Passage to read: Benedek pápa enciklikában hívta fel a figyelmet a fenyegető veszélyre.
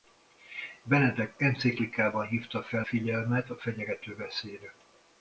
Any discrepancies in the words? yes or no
yes